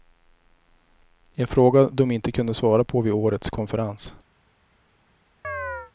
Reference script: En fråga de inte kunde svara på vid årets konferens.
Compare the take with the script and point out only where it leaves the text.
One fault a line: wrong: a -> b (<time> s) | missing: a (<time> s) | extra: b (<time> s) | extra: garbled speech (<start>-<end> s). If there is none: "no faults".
no faults